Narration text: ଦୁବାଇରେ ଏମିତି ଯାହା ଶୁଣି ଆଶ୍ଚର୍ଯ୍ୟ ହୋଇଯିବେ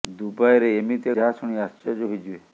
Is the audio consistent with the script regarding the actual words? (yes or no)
yes